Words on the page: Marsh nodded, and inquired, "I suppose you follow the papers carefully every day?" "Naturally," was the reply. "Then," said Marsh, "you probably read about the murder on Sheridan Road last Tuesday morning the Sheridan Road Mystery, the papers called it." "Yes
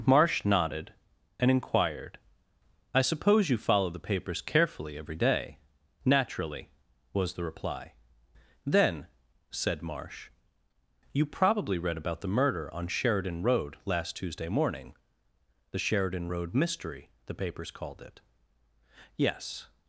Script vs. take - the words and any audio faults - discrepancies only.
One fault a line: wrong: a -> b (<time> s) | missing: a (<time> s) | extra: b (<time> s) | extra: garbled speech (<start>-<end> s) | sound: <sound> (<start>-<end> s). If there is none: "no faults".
no faults